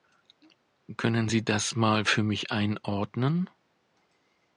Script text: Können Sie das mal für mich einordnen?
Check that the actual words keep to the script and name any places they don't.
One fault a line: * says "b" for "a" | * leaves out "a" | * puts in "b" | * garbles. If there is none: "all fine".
all fine